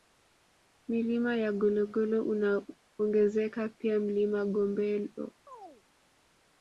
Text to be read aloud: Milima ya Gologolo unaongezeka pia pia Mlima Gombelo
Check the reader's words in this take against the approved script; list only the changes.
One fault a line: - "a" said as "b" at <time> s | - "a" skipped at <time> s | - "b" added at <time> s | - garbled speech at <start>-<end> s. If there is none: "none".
- "pia" skipped at 4.0 s